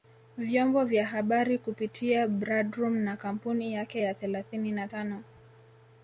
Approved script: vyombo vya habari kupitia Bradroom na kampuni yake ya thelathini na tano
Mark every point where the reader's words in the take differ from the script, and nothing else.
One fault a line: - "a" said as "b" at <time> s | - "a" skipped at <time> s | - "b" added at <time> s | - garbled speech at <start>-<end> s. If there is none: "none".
none